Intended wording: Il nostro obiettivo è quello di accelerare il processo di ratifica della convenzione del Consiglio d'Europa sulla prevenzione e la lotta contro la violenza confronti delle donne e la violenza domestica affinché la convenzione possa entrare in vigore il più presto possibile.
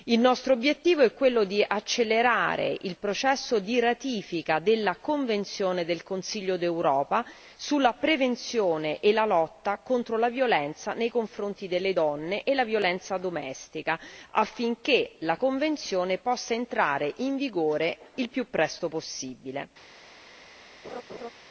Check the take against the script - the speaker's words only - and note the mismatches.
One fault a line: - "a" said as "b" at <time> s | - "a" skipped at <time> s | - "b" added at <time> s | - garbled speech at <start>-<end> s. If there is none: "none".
- "nei" added at 10.9 s